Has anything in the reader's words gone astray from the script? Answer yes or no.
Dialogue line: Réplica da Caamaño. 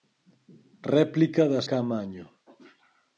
no